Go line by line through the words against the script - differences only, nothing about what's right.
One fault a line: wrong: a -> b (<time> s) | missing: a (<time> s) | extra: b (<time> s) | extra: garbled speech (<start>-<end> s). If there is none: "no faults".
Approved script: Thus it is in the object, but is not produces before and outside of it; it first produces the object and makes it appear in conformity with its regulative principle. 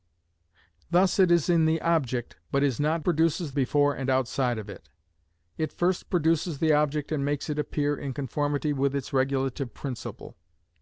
no faults